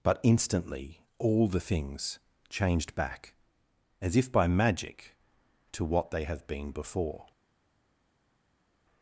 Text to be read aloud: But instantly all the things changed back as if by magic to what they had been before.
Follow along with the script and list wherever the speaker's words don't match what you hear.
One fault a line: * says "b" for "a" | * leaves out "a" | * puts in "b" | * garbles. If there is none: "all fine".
* says "have" for "had"